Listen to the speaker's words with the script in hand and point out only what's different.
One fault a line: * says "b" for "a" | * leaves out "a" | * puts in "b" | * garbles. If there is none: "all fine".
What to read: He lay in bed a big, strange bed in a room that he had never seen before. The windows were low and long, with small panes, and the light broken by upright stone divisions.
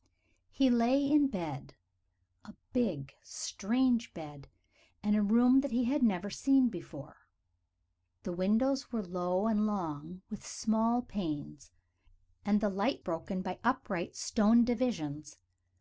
all fine